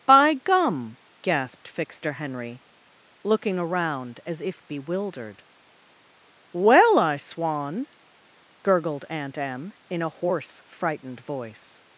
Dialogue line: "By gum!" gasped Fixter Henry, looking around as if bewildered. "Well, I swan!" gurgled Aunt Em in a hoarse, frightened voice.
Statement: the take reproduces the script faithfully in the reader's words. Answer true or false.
true